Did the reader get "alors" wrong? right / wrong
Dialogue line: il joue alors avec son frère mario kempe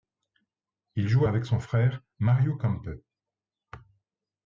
wrong